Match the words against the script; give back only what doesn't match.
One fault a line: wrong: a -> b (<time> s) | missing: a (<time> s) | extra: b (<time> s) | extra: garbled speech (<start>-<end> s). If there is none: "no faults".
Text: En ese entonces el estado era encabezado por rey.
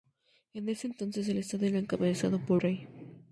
no faults